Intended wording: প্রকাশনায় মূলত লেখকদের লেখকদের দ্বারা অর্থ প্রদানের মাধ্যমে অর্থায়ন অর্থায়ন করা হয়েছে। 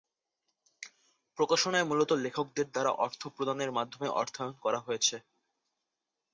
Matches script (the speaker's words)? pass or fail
fail